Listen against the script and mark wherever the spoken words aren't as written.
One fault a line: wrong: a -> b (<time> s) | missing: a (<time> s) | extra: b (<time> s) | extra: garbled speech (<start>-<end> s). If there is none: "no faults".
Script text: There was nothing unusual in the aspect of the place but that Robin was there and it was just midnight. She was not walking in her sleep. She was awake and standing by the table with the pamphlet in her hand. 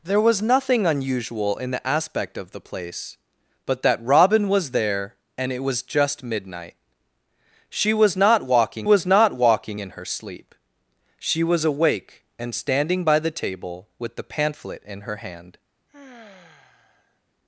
extra: was not walking (8.8 s)